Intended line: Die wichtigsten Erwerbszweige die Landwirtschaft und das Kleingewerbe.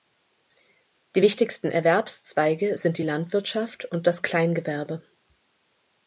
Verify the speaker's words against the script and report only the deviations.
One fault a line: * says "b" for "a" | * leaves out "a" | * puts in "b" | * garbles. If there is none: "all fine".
* puts in "sind"